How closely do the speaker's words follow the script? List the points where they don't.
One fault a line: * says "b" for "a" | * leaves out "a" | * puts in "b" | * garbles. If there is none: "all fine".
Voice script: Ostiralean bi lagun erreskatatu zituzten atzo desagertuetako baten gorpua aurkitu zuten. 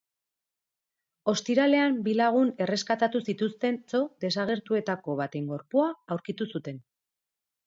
all fine